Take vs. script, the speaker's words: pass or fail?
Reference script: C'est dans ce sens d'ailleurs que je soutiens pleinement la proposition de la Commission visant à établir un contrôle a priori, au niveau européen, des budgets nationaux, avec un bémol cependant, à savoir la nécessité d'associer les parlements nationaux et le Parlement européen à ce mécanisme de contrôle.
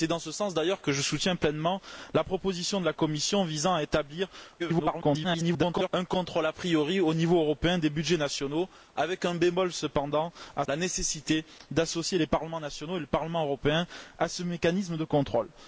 fail